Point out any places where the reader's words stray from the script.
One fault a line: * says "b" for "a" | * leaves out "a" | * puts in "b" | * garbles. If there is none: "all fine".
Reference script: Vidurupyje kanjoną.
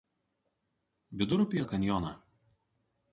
all fine